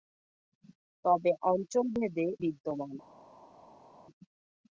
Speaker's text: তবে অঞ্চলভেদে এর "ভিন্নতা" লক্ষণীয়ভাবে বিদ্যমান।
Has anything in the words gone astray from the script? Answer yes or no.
yes